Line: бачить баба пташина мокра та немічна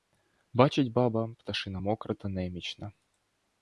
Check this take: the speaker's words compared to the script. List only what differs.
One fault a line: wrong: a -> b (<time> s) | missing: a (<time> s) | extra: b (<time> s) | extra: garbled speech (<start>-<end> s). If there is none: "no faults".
no faults